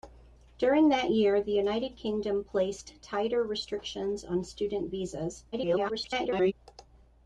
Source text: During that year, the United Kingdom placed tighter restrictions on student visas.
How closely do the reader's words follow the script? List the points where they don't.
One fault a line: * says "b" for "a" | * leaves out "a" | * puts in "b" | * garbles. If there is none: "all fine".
* garbles